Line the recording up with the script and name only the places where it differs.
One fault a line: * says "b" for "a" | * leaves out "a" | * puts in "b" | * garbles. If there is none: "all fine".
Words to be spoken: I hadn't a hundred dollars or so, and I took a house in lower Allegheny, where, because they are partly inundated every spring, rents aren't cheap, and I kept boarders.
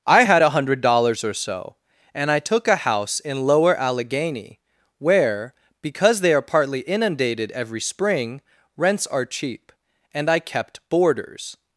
* says "had" for "hadn't"
* says "are" for "aren't"